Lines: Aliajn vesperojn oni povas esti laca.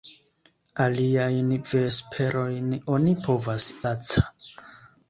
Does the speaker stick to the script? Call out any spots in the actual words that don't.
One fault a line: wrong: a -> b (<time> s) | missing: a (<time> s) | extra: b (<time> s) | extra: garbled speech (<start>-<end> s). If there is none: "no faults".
missing: esti (3.7 s)